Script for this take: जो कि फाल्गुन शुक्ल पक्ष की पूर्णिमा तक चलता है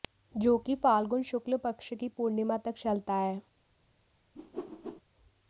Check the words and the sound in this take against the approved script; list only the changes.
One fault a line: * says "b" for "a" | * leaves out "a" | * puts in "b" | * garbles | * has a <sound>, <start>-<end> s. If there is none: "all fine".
* has a whoosh, 4.4-5.0 s